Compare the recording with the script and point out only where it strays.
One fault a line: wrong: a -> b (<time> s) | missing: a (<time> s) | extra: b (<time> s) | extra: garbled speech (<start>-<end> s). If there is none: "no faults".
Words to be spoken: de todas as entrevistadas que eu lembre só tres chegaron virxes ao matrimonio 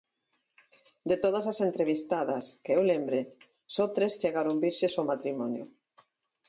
no faults